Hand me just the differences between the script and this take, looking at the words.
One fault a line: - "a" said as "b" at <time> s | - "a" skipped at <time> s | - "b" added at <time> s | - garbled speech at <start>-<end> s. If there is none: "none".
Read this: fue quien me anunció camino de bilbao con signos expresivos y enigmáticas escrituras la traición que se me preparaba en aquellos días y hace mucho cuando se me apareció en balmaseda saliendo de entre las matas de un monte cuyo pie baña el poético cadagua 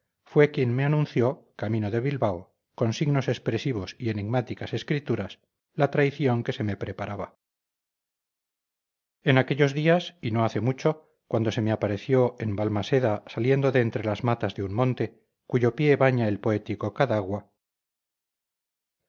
- "no" added at 10.3 s